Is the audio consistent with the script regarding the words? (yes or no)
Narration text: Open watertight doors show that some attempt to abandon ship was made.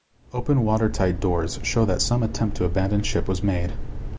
yes